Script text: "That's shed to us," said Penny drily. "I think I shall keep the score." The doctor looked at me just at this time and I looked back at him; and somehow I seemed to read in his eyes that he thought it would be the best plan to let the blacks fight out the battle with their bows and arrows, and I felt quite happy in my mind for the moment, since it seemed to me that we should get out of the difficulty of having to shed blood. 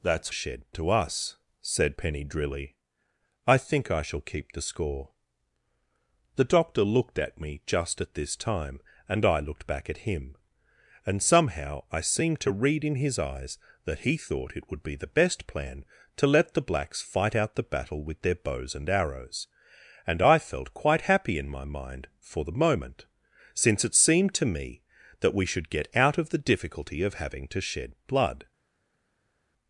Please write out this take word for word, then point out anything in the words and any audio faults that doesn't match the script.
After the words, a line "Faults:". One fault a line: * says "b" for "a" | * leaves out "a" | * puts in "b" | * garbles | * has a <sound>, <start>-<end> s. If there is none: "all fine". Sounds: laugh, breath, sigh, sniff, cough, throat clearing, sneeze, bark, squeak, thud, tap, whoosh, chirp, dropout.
"That's shed to us," said Penny drily. "I think I shall keep the score." The doctor looked at me just at this time and I looked back at him; and somehow I seemed to read in his eyes that he thought it would be the best plan to let the blacks fight out the battle with their bows and arrows, and I felt quite happy in my mind for the moment, since it seemed to me that we should get out of the difficulty of having to shed blood.
Faults:
all fine